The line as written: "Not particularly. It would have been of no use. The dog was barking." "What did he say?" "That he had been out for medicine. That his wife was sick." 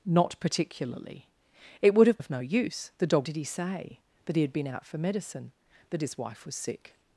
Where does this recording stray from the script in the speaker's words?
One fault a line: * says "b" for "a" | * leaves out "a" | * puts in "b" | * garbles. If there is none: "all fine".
* leaves out "been"
* leaves out "was barking What"